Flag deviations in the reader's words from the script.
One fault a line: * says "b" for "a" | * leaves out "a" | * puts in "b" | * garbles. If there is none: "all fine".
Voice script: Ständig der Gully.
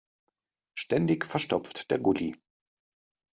* puts in "verstopft"